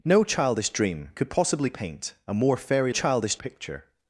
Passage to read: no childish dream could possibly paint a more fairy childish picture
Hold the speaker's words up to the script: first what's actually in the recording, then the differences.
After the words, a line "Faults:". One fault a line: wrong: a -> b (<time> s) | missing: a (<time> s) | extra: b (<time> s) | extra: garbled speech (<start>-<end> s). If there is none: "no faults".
no childish dream could possibly paint a more fairy childish picture
Faults:
no faults